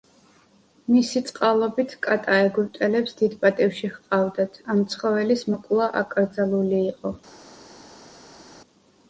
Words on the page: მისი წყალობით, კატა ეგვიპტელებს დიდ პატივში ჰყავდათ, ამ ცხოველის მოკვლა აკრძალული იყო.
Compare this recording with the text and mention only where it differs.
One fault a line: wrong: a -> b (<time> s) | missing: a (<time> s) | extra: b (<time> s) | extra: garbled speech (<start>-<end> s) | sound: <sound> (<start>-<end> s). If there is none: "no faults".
no faults